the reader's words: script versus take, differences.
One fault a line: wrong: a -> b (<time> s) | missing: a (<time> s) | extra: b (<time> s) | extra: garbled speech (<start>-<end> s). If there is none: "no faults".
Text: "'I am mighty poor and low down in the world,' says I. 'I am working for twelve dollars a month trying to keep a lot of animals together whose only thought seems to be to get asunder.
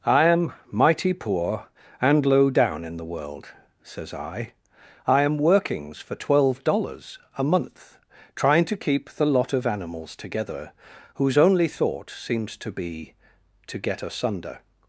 wrong: working -> workings (5.4 s)
wrong: a -> the (9.1 s)